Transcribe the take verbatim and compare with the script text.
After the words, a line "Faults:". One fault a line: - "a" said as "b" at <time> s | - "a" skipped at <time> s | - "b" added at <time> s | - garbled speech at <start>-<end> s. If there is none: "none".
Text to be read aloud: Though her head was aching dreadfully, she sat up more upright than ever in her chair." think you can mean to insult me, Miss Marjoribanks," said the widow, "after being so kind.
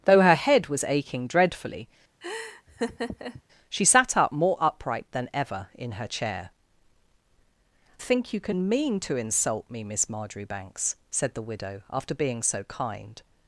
Though her head was aching dreadfully, she sat up more upright than ever in her chair." think you can mean to insult me, Miss Marjoribanks," said the widow, "after being so kind.
Faults:
none